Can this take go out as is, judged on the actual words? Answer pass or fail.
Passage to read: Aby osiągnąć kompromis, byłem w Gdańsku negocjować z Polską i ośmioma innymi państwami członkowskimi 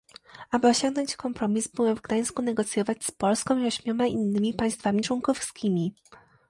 pass